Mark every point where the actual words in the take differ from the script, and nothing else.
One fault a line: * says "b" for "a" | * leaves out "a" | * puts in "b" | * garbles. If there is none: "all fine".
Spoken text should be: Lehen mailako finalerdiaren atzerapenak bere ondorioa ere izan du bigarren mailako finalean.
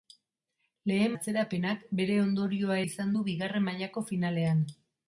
* leaves out "mailako finalerdiaren"
* leaves out "ere"